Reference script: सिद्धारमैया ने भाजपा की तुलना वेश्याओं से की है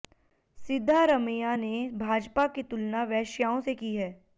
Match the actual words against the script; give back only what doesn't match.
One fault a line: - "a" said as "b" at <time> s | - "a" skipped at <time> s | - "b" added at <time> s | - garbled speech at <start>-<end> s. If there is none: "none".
none